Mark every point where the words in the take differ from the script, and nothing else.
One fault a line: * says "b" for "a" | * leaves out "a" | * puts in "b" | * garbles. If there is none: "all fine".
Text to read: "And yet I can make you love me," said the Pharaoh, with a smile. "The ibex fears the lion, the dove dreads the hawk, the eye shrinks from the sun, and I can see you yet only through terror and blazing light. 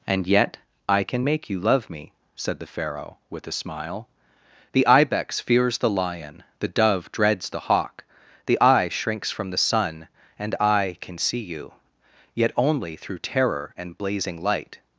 all fine